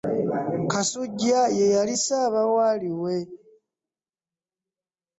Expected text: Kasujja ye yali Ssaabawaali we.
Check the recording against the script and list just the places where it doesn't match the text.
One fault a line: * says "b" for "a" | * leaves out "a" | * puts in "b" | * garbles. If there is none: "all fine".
all fine